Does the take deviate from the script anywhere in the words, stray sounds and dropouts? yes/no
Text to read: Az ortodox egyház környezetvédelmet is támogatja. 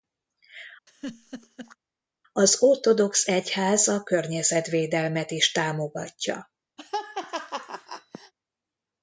yes